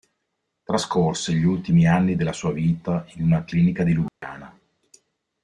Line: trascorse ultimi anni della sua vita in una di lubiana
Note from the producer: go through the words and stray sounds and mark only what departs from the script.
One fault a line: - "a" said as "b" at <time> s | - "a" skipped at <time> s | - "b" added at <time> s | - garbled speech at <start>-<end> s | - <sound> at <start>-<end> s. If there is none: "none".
- "gli" added at 1.3 s
- "clinica" added at 3.4 s
- dropout at 4.1-4.2 s